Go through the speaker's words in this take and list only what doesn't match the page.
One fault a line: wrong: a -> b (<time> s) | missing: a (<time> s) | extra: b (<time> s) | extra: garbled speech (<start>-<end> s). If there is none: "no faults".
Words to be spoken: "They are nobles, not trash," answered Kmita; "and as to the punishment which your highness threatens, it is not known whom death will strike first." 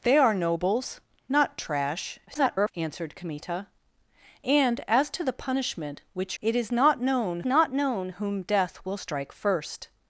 extra: garbled speech (2.3-2.7 s)
wrong: your highness threatens it is -> it is not known (6.4 s)